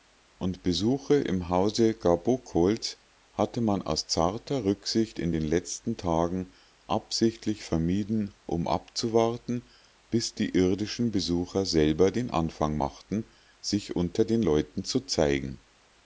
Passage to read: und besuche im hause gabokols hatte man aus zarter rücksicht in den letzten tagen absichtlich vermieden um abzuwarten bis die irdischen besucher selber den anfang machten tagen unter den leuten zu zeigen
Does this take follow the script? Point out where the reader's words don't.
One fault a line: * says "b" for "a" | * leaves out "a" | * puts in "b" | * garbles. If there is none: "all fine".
* says "sich" for "tagen"